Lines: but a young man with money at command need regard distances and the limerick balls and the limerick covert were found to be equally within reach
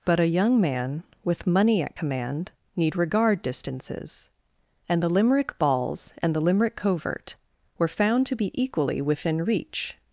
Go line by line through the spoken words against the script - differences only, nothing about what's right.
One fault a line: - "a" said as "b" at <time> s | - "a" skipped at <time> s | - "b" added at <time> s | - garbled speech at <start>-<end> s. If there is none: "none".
none